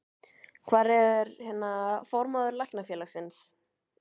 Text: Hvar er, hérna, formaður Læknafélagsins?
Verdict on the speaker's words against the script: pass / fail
pass